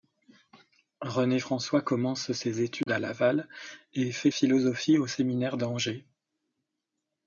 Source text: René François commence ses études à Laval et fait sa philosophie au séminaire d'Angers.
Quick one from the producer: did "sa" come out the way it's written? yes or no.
no